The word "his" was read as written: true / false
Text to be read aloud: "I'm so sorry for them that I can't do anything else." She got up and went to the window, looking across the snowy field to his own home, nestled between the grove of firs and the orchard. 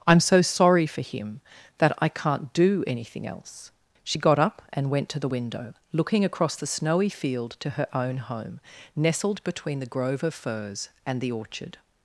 false